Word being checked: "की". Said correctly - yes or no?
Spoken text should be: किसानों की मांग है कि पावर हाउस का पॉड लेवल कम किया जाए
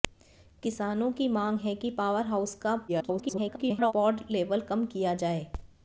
yes